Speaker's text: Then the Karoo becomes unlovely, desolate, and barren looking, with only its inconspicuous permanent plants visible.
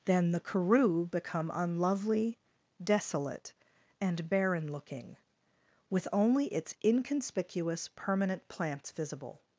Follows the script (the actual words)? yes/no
no